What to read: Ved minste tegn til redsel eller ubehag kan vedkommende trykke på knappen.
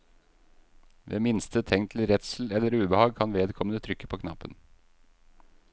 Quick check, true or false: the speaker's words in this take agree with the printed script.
true